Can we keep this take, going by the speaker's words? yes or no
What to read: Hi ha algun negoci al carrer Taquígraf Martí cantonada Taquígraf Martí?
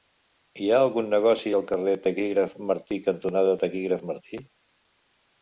yes